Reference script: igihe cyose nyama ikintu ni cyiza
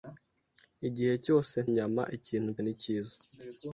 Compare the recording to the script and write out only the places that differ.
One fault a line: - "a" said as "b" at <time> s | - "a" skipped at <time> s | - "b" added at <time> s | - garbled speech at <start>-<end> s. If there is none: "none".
none